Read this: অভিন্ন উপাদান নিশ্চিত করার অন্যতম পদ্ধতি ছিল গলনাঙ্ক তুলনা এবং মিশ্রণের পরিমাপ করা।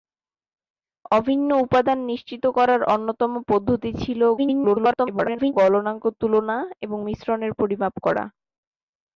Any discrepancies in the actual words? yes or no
yes